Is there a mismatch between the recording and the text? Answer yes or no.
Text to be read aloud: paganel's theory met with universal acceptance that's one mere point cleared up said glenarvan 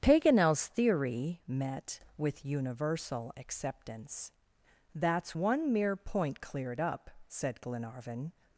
no